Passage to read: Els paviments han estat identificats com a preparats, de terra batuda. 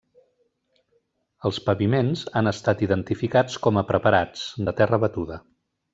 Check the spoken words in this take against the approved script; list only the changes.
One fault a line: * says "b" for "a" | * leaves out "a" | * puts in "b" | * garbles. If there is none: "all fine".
all fine